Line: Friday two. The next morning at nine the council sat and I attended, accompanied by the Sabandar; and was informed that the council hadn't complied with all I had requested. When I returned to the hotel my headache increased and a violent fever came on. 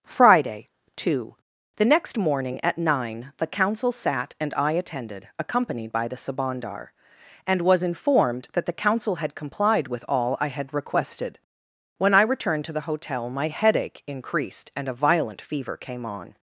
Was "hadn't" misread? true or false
true